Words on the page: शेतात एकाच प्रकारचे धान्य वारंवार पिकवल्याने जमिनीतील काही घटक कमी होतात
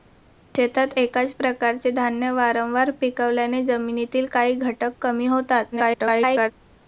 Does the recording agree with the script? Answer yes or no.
no